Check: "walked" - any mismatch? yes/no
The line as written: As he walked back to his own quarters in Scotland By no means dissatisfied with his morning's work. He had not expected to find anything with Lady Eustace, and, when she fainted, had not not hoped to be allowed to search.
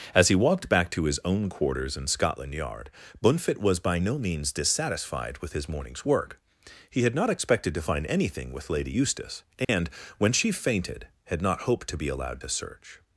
no